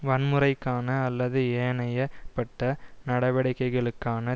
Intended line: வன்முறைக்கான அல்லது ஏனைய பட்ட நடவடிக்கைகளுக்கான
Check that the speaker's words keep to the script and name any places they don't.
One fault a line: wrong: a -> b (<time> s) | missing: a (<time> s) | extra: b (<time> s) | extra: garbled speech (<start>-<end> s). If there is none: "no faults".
no faults